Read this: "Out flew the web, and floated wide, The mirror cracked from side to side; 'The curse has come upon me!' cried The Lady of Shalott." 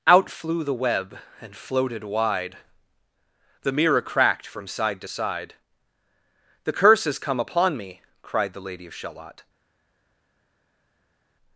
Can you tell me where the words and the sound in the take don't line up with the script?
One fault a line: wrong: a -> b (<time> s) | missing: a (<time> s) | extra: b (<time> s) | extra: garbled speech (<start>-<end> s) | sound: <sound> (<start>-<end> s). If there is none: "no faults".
no faults